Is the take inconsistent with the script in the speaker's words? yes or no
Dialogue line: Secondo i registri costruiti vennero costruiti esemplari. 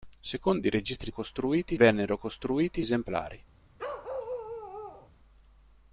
no